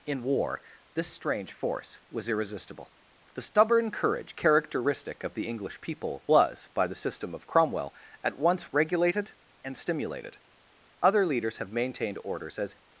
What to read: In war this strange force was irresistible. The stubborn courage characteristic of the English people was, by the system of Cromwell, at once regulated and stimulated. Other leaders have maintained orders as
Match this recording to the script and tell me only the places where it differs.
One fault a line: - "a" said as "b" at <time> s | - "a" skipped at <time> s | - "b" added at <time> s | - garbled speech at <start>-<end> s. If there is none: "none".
none